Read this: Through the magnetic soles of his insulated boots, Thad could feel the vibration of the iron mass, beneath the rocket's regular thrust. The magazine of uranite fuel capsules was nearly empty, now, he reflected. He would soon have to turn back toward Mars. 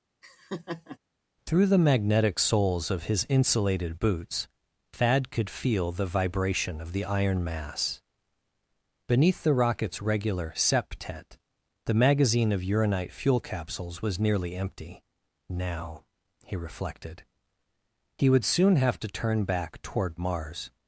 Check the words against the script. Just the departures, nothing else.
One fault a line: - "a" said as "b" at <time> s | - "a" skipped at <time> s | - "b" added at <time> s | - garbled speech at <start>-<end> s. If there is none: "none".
- "thrust" said as "septet" at 10.5 s